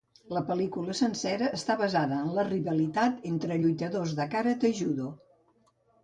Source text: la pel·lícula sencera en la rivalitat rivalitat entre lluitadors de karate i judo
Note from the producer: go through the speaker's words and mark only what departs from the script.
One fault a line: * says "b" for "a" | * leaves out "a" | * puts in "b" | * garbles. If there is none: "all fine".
* puts in "està basada"
* leaves out "rivalitat"